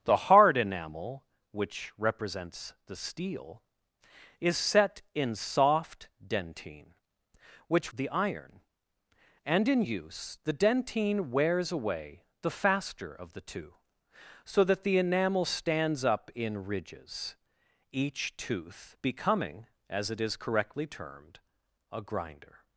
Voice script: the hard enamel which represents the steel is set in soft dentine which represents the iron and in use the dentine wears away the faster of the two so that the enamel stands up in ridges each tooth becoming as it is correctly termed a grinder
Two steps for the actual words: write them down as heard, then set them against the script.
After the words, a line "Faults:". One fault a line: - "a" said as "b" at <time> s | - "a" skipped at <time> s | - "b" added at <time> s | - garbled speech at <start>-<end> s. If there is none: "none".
the hard enamel which represents the steel is set in soft dentine which the iron and in use the dentine wears away the faster of the two so that the enamel stands up in ridges each tooth becoming as it is correctly termed a grinder
Faults:
- "represents" skipped at 7.9 s